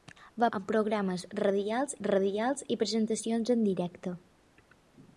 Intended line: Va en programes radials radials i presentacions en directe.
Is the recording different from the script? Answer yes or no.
no